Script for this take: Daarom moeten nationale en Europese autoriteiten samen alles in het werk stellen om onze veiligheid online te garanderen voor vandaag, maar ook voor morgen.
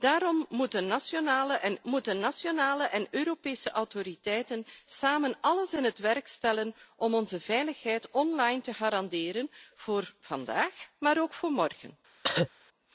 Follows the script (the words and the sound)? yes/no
no